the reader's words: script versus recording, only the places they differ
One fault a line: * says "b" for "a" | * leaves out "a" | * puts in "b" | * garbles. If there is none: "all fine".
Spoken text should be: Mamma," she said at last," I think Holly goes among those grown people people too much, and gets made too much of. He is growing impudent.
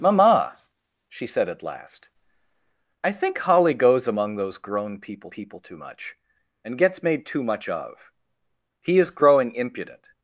all fine